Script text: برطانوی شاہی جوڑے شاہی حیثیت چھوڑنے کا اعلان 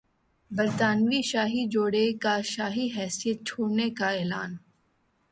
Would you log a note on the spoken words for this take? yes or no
yes